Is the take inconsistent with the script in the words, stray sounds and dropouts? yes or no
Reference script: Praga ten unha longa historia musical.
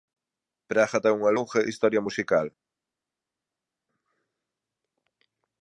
no